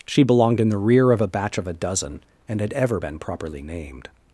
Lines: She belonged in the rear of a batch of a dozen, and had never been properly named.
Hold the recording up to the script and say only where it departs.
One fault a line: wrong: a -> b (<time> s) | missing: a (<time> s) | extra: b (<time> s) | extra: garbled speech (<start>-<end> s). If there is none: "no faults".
wrong: never -> ever (2.7 s)